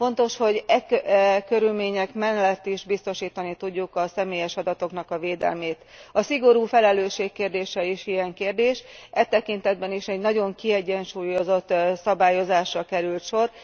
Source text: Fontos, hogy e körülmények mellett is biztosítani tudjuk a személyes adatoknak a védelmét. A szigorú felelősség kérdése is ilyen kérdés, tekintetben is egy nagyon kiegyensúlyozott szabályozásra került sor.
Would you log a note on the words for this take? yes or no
yes